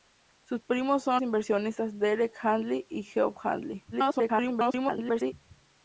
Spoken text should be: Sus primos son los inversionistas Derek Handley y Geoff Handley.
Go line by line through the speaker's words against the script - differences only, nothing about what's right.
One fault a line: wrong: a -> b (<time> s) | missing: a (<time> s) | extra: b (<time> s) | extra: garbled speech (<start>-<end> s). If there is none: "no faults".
missing: los (1.2 s)
extra: garbled speech (3.9-5.3 s)